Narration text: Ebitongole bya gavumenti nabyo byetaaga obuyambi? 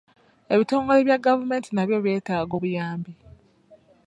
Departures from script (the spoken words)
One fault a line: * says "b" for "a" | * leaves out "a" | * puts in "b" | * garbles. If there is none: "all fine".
all fine